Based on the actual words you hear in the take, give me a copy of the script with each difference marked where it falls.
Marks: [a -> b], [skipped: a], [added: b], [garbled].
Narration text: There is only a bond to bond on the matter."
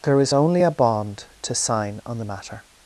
There is only a bond to [bond -> sign] on the matter."